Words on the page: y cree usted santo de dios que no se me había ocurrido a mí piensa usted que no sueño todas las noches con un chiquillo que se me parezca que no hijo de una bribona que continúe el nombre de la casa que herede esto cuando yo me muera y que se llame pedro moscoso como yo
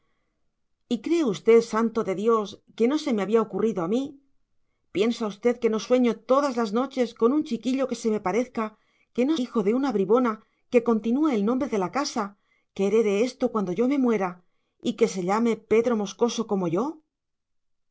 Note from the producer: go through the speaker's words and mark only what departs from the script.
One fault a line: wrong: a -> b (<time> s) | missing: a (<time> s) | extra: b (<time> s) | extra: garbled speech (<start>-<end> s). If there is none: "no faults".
no faults